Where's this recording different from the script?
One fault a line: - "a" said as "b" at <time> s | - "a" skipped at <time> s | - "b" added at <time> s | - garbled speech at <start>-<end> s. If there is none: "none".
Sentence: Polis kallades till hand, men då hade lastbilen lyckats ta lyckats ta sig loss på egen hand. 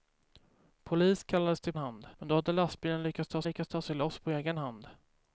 none